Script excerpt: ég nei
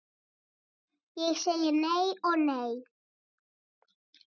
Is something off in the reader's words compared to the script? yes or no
yes